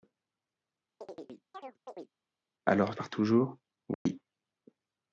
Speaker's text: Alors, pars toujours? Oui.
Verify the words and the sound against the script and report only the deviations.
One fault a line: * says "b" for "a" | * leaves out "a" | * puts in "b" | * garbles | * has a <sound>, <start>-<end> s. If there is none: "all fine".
* has a chirp, 1.0-2.1 s
* has a dropout, 3.9-4.1 s